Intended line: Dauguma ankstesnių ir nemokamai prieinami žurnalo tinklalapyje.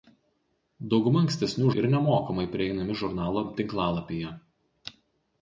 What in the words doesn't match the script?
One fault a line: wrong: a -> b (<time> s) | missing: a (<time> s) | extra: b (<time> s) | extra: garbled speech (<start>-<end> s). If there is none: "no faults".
no faults